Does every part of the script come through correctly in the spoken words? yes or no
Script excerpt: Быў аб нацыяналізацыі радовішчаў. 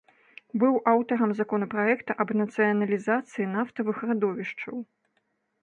no